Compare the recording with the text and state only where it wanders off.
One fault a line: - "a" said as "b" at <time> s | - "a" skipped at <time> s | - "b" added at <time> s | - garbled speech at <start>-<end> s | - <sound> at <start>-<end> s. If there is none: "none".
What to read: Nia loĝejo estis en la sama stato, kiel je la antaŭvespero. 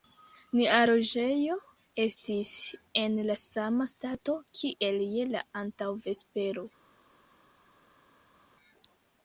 none